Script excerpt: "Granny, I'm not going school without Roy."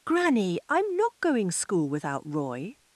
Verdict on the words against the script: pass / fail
pass